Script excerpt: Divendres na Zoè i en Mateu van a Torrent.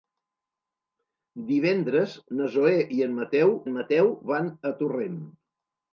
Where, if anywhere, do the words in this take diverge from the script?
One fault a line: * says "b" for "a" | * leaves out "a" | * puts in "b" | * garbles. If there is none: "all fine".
* puts in "en Mateu"